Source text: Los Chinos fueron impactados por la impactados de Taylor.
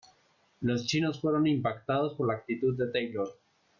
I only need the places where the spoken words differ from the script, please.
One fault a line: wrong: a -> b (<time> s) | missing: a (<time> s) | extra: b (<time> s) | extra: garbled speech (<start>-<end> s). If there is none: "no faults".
wrong: impactados -> actitud (2.4 s)